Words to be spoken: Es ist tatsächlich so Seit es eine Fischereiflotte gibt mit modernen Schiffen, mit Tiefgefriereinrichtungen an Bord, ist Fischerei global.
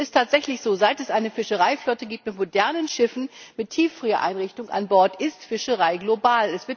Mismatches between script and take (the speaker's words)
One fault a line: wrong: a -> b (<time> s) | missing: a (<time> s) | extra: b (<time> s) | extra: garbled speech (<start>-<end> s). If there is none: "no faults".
no faults